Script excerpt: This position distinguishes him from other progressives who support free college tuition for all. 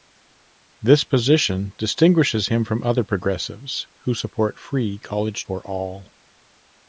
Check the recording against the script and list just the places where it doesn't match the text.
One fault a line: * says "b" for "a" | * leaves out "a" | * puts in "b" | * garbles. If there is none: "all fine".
* leaves out "tuition"